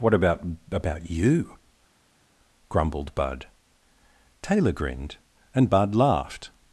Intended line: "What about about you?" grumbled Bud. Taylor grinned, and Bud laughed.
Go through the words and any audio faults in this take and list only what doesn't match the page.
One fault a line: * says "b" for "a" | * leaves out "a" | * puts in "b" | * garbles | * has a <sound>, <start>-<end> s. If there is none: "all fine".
all fine